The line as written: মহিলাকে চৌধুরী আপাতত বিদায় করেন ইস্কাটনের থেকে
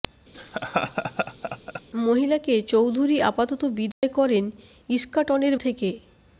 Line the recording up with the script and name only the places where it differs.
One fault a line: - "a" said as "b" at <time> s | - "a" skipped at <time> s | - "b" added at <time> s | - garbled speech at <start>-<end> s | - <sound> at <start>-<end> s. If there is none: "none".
- laugh at 0.3-1.8 s
- dropout at 3.9-4.0 s